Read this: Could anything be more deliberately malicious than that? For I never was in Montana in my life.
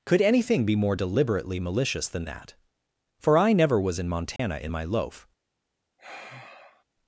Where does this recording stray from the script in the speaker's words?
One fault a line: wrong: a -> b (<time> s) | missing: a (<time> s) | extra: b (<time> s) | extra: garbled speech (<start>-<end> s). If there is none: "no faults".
wrong: life -> loaf (4.8 s)